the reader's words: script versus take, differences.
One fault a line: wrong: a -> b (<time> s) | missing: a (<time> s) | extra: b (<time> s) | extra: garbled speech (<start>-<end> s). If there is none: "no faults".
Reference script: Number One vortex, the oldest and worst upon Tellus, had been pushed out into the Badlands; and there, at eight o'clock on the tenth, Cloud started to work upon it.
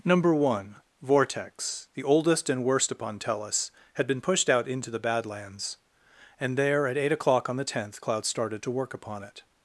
no faults